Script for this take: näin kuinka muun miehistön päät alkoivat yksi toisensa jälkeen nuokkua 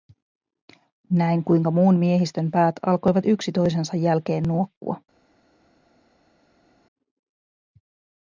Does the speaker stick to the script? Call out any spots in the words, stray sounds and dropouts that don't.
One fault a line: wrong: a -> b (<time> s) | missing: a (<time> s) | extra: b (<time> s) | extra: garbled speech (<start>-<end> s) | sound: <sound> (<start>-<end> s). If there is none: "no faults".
no faults